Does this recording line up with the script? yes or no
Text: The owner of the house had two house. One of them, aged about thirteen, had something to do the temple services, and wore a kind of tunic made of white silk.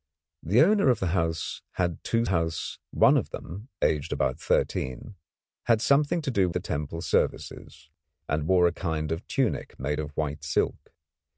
yes